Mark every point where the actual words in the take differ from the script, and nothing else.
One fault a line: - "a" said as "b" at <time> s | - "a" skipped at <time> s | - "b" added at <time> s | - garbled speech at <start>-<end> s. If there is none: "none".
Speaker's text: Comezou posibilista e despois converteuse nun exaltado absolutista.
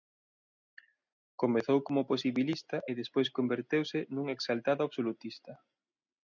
- "como" added at 1.9 s